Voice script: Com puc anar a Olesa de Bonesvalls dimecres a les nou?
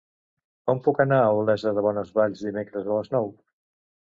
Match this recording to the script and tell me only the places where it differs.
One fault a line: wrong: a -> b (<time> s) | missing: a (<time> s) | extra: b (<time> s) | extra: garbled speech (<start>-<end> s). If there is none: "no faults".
no faults